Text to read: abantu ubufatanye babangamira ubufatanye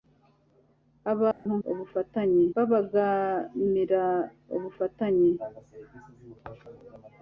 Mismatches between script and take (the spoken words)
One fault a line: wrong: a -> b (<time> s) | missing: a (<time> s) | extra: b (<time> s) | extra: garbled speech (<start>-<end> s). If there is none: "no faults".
no faults